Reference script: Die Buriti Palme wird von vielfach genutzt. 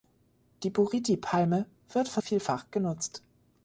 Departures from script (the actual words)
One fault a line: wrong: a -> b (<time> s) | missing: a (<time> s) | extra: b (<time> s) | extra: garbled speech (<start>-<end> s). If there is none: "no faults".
no faults